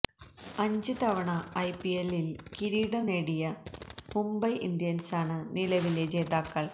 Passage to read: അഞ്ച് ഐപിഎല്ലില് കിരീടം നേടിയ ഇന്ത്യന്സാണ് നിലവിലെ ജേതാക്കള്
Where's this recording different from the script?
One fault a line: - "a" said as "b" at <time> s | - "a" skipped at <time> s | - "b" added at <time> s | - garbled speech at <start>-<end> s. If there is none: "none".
- "തവണ" added at 1.0 s
- "മുംബൈ" added at 4.1 s